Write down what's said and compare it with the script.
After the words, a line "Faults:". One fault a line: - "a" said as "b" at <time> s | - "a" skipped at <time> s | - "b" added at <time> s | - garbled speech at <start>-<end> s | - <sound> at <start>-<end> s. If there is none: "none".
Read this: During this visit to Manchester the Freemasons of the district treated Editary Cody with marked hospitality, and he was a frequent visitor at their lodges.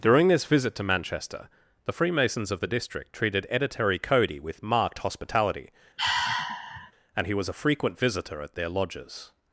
During this visit to Manchester the Freemasons of the district treated Editary Cody with marked hospitality, and he was a frequent visitor at their lodges.
Faults:
- sigh at 6.0-6.9 s